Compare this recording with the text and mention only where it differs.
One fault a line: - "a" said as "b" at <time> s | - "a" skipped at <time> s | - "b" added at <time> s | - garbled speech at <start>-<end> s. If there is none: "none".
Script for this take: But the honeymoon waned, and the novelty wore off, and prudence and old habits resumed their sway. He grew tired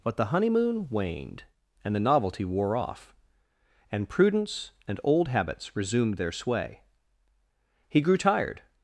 none